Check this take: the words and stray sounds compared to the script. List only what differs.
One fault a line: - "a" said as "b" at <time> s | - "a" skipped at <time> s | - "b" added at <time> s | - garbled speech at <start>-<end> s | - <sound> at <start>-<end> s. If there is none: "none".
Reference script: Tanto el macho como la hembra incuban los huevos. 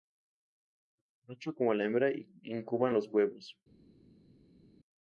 none